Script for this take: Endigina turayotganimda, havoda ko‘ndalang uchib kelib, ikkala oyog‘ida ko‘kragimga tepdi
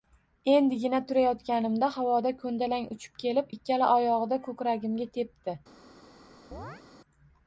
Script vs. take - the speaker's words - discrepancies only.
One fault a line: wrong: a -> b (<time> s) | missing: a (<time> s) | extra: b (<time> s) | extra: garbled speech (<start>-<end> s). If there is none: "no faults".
no faults